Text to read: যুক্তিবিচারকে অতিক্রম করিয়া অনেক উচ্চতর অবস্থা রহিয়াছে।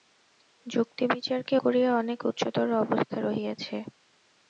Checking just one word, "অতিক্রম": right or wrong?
wrong